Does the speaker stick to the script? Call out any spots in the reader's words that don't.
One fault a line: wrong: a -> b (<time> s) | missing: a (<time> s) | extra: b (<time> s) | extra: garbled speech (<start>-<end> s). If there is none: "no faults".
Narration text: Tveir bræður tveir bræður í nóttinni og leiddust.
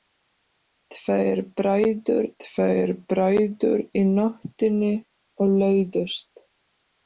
no faults